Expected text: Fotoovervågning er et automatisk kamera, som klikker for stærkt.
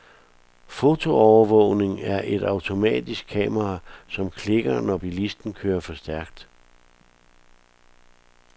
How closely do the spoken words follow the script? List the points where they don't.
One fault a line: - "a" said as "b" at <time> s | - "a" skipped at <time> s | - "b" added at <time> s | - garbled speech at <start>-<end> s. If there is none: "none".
- "når bilisten kører" added at 4.8 s